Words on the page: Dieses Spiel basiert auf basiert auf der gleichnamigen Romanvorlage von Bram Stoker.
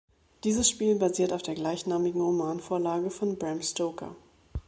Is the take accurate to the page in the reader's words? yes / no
no